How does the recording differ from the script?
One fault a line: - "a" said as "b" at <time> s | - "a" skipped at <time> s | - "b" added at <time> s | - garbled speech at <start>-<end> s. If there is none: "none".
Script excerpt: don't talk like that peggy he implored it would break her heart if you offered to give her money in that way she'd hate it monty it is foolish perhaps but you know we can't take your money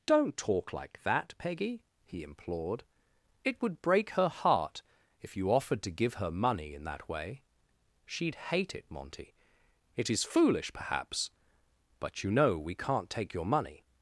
none